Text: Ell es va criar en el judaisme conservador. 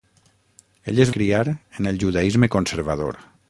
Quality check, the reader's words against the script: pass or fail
fail